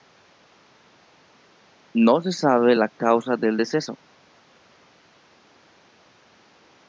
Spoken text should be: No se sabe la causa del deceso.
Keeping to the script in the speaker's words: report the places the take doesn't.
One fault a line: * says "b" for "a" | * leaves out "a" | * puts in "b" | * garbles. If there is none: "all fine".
all fine